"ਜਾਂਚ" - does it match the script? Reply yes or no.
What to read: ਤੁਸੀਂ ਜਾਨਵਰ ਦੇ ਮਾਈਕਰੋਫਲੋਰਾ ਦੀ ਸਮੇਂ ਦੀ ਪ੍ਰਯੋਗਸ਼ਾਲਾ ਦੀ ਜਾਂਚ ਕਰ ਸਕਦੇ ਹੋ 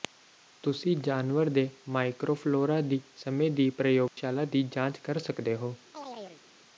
yes